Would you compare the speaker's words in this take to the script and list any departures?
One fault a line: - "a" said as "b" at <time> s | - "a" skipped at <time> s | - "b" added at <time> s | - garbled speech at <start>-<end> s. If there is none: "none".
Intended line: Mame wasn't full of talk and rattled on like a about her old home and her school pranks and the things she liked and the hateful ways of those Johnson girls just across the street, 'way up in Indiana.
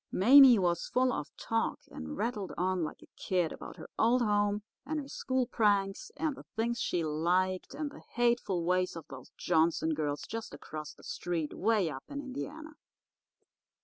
- "wasn't" said as "was" at 0.6 s
- "kid" added at 3.2 s